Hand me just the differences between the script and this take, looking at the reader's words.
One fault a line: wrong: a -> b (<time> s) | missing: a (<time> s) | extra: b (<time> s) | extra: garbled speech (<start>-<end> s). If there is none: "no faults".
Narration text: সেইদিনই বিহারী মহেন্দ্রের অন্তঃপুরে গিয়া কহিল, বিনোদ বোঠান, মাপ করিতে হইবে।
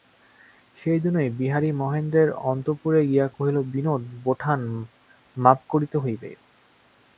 no faults